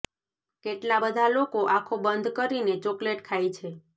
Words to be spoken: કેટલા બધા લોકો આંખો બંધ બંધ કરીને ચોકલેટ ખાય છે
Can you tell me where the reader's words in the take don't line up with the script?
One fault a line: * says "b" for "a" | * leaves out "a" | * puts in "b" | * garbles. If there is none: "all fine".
* leaves out "બંધ"